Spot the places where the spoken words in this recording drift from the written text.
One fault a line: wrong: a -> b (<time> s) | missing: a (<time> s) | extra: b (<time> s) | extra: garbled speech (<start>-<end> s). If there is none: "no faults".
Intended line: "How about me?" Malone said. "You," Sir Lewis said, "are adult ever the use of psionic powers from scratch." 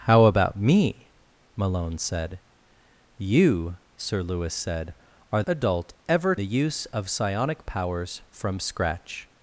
no faults